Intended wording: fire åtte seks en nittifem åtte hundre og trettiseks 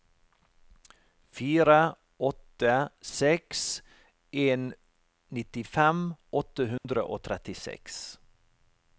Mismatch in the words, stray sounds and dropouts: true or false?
true